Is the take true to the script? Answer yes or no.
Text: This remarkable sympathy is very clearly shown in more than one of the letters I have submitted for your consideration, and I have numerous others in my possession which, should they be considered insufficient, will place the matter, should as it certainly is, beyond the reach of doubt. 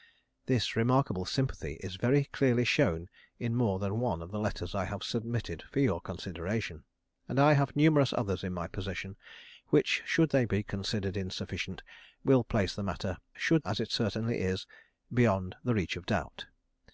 yes